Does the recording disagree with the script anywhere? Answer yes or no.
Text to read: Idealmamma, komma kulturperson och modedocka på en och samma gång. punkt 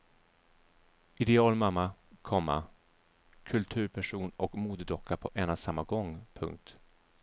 no